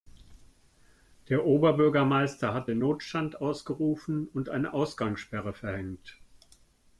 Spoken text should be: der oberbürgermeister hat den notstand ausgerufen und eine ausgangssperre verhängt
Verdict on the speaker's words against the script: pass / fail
pass